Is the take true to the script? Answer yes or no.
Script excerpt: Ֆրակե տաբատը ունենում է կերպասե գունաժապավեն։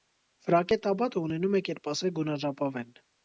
yes